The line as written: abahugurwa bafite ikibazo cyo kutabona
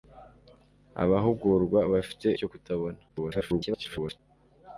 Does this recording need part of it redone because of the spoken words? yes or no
yes